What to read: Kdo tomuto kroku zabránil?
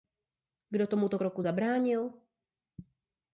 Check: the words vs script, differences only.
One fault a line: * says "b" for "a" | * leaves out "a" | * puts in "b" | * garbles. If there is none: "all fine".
all fine